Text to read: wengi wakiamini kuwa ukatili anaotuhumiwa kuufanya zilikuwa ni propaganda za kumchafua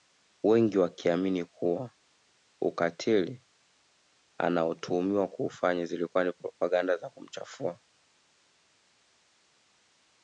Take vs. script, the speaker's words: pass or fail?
pass